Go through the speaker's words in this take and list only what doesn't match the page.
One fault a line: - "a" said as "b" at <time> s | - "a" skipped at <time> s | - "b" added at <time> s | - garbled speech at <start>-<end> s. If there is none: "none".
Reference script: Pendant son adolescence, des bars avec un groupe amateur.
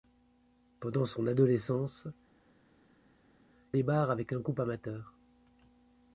none